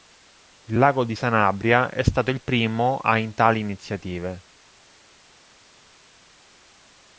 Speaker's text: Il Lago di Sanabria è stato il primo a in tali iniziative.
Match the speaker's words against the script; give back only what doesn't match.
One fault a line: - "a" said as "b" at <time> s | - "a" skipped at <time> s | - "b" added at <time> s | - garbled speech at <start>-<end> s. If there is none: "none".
none